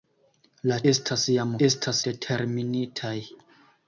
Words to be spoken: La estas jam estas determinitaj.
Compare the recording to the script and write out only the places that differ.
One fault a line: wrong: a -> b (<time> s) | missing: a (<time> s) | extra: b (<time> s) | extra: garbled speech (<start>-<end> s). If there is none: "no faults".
no faults